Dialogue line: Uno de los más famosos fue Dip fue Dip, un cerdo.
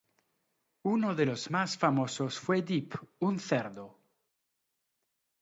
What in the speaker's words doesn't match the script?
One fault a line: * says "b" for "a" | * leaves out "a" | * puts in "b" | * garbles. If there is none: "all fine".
* leaves out "fue Dip"